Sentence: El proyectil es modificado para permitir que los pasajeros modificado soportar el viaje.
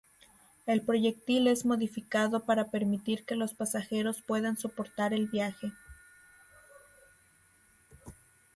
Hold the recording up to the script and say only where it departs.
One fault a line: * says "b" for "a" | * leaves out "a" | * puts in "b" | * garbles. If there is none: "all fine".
* says "puedan" for "modificado"